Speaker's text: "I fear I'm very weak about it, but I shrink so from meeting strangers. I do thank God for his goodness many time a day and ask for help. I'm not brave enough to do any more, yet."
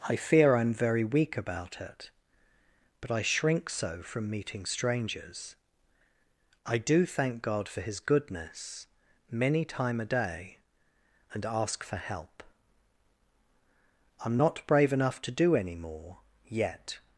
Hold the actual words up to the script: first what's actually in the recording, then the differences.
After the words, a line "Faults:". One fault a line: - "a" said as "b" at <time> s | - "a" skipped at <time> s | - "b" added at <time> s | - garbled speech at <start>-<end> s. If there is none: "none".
"I fear I'm very weak about it, but I shrink so from meeting strangers. I do thank God for his goodness many time a day and ask for help. I'm not brave enough to do any more, yet."
Faults:
none